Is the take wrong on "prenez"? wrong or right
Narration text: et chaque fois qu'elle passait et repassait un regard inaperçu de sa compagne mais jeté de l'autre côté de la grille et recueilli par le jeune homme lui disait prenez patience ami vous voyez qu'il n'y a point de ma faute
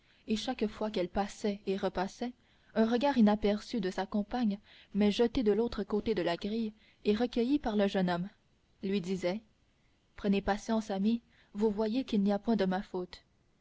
right